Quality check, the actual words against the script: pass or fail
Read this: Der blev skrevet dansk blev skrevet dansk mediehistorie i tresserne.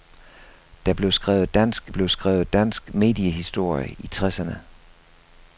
pass